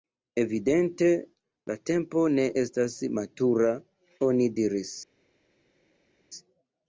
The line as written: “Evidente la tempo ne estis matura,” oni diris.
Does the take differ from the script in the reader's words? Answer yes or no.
yes